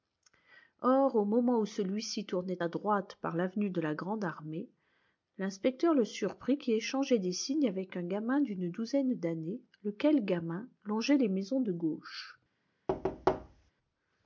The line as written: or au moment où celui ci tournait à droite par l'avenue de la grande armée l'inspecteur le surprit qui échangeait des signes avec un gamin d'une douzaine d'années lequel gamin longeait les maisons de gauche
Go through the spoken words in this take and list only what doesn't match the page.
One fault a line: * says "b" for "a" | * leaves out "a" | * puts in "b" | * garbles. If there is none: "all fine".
all fine